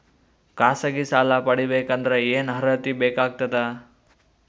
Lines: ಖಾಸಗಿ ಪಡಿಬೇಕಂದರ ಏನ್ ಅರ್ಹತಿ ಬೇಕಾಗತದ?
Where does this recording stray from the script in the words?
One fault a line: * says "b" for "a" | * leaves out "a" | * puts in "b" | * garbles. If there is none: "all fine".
* puts in "ಸಾಲ"